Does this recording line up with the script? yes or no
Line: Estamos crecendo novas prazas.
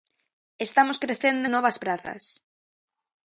yes